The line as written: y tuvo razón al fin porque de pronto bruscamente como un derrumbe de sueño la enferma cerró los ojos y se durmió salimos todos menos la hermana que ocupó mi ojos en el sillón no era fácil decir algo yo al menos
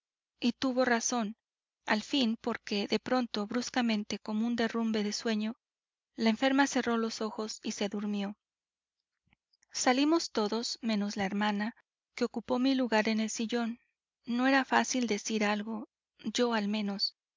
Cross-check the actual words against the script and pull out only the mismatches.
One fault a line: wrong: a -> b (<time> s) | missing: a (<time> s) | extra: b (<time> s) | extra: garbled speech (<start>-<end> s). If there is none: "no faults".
wrong: ojos -> lugar (12.7 s)